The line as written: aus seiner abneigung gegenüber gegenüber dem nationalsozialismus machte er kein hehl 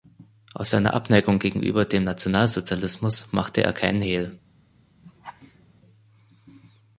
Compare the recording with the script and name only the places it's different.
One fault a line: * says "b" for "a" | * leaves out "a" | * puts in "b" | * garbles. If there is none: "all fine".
* leaves out "gegenüber"